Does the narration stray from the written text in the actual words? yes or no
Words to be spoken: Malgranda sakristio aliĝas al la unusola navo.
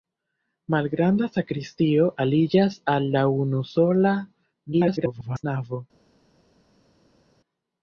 yes